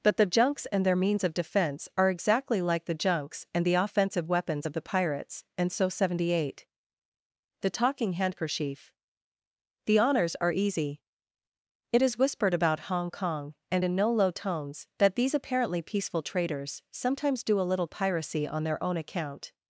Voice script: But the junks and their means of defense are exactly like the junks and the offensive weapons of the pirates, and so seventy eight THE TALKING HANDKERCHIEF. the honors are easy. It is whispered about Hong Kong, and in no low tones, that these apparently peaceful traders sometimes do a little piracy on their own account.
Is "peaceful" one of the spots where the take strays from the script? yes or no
no